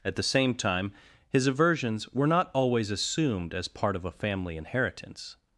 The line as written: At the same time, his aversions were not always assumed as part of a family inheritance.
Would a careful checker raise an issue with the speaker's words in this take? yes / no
no